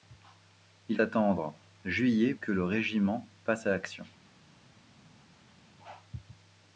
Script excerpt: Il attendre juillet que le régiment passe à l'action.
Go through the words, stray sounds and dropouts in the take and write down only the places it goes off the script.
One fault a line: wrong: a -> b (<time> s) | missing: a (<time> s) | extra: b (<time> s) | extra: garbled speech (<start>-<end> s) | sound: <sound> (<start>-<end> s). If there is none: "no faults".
no faults